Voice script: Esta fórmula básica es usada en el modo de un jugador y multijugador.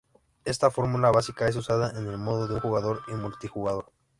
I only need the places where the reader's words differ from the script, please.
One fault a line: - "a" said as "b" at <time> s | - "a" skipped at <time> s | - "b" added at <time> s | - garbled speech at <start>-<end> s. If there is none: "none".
none